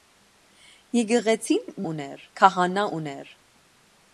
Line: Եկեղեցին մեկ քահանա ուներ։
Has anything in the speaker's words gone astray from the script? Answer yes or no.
yes